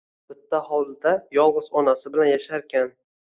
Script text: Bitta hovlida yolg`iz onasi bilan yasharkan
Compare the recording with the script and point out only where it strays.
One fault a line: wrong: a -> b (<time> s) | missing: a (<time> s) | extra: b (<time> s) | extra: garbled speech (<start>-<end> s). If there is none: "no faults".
no faults